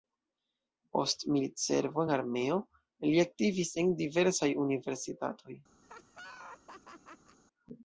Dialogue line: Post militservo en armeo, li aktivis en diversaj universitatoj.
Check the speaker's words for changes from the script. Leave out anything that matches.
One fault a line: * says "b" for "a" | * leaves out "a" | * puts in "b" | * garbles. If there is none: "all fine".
all fine